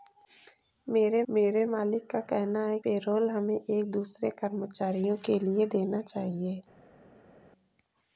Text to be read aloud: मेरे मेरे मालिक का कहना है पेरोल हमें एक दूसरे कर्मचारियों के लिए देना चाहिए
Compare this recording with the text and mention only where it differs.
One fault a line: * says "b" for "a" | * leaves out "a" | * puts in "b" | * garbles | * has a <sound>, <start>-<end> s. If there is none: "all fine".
all fine